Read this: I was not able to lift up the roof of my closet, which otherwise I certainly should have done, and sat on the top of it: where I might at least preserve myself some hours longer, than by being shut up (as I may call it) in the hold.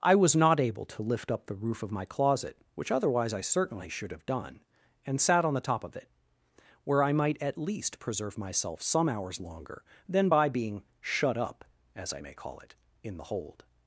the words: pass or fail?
pass